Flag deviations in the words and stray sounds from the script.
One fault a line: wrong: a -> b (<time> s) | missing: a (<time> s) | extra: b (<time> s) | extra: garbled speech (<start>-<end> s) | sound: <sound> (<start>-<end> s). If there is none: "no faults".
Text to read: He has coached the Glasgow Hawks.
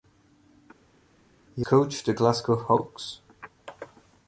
missing: has (1.7 s)